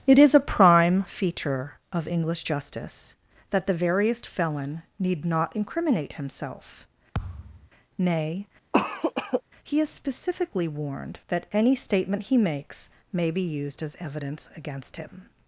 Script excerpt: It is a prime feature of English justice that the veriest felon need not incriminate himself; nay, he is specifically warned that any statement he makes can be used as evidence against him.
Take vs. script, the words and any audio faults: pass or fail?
fail